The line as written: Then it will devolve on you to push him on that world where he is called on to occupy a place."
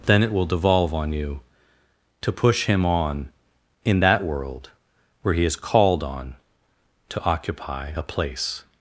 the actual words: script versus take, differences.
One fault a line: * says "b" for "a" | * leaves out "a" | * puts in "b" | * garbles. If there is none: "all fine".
* puts in "in"